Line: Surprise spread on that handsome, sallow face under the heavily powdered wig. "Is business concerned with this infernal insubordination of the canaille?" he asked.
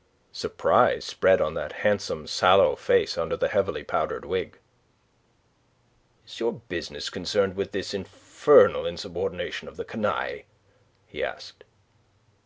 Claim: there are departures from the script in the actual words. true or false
true